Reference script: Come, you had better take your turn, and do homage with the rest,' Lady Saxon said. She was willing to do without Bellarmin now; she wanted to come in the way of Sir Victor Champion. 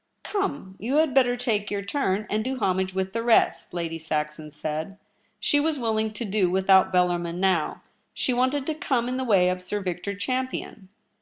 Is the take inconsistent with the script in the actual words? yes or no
no